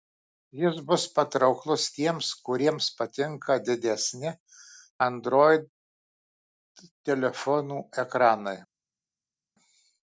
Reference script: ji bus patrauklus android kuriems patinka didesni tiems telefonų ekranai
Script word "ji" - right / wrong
wrong